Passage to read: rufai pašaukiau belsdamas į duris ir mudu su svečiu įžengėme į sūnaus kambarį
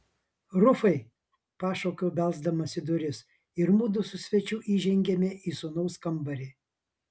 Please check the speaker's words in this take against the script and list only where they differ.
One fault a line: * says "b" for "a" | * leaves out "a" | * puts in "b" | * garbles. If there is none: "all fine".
all fine